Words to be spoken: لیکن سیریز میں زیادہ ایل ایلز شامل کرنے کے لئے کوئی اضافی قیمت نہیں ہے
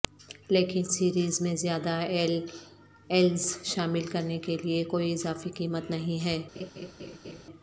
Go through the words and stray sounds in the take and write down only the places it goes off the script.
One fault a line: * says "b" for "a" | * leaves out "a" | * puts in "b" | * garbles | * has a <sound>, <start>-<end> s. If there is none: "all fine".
* has a laugh, 6.5-7.4 s